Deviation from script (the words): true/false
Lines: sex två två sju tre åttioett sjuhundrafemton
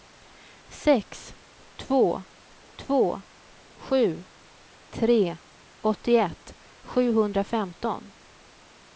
false